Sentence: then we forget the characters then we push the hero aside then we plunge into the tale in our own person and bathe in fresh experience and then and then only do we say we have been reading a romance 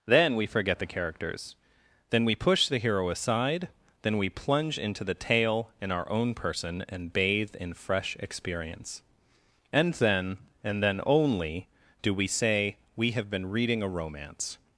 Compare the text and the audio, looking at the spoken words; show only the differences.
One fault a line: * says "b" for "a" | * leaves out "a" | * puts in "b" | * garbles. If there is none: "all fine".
all fine